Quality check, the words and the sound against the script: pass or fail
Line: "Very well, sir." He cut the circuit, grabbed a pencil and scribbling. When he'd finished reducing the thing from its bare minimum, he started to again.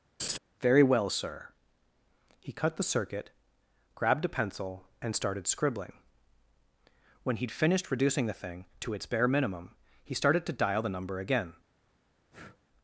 fail